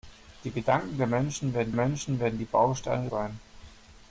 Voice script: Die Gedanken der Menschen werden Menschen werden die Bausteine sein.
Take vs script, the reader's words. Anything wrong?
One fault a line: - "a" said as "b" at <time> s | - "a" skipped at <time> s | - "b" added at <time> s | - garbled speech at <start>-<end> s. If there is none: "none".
none